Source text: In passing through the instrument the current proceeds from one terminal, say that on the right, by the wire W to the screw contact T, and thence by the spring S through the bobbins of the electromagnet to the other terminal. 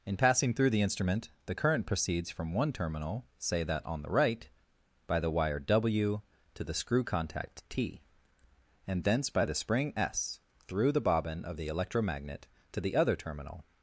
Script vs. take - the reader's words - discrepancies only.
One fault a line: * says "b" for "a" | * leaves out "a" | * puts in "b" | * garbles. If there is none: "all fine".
* says "bobbin" for "bobbins"